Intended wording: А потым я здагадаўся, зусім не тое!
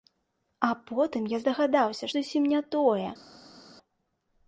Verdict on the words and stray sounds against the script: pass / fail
pass